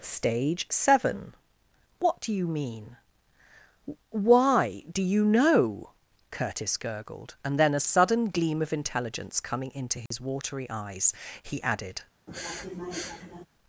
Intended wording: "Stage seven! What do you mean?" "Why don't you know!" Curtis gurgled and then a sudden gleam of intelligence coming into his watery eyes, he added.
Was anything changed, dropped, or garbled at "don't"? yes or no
yes